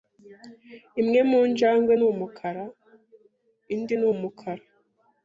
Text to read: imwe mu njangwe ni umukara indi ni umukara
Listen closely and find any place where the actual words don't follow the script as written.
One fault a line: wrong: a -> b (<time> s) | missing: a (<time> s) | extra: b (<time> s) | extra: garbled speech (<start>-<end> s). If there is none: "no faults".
no faults